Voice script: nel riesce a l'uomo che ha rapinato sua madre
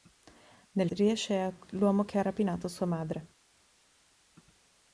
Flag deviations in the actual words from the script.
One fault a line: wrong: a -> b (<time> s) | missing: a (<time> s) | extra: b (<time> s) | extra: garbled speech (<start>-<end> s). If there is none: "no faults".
no faults